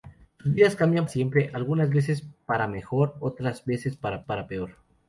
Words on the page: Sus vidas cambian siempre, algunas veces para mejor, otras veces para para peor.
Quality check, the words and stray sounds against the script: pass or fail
pass